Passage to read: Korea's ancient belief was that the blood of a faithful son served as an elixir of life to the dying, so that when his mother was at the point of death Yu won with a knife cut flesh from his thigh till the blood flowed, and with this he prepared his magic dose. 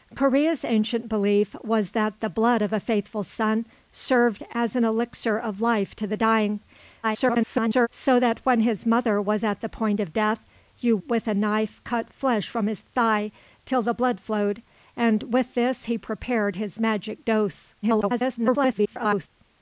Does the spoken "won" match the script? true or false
false